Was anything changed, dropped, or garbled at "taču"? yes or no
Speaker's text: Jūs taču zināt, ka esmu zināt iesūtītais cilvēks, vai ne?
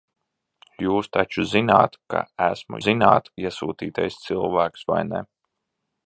no